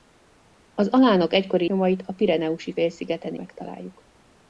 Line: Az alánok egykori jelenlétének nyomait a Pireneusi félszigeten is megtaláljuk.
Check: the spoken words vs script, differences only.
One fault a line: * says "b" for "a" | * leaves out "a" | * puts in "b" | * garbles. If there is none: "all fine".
* leaves out "jelenlétének"
* leaves out "is"